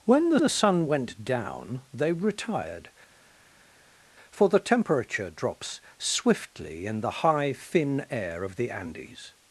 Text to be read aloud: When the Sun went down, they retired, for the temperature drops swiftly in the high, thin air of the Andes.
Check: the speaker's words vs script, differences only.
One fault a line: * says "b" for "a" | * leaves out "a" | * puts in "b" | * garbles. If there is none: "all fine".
* puts in "the"